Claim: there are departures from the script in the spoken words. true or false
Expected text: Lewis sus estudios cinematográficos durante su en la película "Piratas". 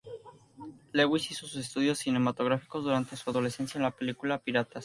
true